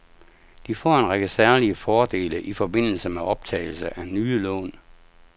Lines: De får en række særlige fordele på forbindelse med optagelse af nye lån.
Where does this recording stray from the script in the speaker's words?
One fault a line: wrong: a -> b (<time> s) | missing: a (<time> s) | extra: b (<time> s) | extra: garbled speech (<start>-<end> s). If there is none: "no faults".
wrong: på -> i (2.4 s)